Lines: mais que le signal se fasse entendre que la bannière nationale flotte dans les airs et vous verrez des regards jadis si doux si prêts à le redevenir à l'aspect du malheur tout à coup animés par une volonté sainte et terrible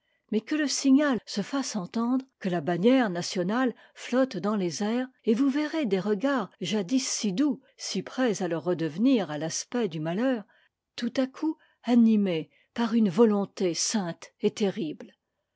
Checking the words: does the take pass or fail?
pass